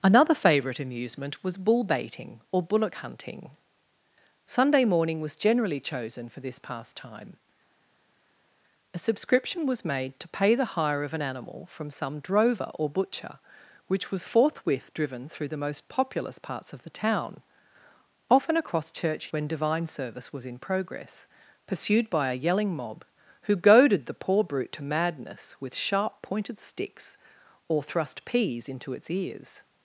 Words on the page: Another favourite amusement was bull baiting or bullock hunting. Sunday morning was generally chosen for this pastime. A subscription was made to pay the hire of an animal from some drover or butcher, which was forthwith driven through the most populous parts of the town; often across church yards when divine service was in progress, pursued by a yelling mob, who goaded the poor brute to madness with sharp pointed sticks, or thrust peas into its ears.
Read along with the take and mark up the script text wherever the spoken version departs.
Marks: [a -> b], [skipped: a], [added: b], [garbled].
Another favourite amusement was bull baiting or bullock hunting. Sunday morning was generally chosen for this pastime. A subscription was made to pay the hire of an animal from some drover or butcher, which was forthwith driven through the most populous parts of the town; often across church [skipped: yards] when divine service was in progress, pursued by a yelling mob, who goaded the poor brute to madness with sharp pointed sticks, or thrust peas into its ears.